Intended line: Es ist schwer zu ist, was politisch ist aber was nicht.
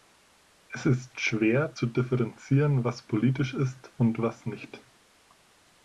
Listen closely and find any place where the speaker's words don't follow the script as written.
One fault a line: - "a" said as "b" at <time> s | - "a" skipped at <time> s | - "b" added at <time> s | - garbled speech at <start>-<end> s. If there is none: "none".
- "ist" said as "differenzieren" at 1.9 s
- "aber" said as "und" at 4.0 s